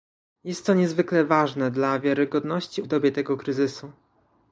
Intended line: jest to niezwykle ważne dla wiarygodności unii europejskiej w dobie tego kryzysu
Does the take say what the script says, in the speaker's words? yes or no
no